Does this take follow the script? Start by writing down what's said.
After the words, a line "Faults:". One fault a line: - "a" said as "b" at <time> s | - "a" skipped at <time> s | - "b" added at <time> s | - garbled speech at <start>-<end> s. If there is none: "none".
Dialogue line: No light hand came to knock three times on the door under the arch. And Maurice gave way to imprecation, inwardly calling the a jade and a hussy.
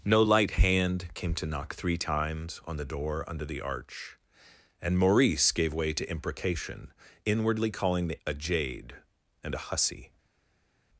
No light hand came to knock three times on the door under the arch. And Maurice gave way to imprecation, inwardly calling the a jade and a hussy.
Faults:
none